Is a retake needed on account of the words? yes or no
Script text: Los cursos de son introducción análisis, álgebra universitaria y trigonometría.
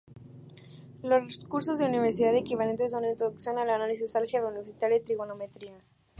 yes